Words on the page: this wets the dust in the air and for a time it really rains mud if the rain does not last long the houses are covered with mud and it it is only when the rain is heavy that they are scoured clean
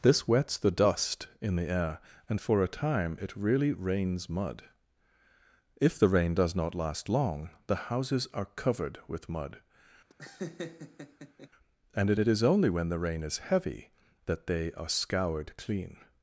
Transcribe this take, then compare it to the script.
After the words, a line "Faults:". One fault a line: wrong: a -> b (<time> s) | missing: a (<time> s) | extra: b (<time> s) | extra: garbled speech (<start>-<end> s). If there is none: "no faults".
this wets the dust in the air and for a time it really rains mud if the rain does not last long the houses are covered with mud and it it is only when the rain is heavy that they are scoured clean
Faults:
no faults